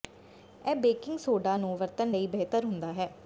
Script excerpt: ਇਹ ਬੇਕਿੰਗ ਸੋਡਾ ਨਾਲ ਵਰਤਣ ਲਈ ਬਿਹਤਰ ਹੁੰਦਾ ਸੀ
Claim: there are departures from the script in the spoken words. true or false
true